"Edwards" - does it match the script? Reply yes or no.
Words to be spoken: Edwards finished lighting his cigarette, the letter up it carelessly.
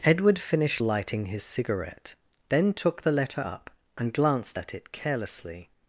no